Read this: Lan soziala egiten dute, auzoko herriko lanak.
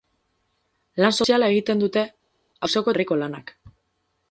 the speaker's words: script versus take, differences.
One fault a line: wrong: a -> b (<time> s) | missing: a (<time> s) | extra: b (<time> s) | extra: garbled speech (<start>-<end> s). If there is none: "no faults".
no faults